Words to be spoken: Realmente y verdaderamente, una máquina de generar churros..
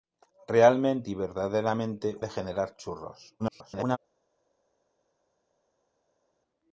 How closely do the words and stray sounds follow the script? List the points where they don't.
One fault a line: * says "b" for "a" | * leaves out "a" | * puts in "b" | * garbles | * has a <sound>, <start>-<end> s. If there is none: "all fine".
* leaves out "una máquina"
* garbles